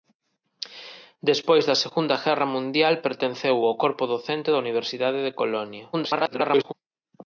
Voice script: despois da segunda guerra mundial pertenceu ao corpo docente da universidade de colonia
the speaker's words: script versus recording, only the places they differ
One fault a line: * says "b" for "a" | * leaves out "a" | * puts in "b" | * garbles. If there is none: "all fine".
* garbles